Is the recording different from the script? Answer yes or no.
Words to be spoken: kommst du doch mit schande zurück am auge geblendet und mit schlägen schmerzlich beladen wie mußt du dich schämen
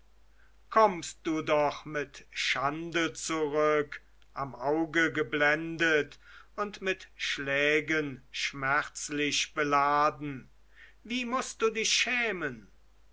no